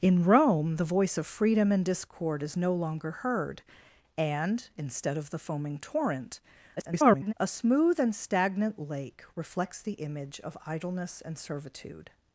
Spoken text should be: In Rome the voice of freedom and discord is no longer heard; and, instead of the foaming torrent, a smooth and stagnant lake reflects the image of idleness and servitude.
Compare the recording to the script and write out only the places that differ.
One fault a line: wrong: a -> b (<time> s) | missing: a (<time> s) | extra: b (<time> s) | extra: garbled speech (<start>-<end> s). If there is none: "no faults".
extra: garbled speech (6.8-7.3 s)